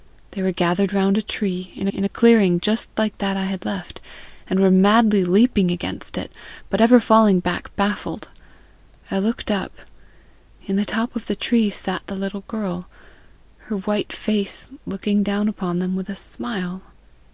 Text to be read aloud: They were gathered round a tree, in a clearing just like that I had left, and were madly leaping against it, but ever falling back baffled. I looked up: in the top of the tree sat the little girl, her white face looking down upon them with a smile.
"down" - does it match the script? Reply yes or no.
yes